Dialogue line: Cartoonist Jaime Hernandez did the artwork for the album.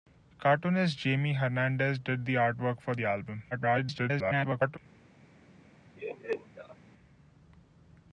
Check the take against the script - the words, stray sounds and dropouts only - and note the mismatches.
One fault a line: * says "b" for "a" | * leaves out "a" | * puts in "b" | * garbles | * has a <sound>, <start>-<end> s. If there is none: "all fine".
* garbles
* has a laugh, 6.0-6.8 s